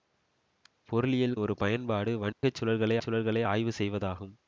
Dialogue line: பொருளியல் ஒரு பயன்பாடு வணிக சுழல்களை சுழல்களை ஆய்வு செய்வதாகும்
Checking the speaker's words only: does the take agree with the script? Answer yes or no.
yes